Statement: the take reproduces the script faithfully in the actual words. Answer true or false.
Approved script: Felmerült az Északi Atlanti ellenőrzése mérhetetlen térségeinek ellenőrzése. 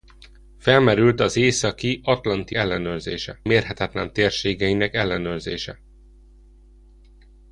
true